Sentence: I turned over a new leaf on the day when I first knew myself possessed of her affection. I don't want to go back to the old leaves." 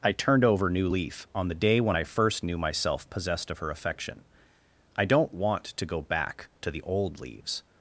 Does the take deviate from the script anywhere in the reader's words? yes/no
yes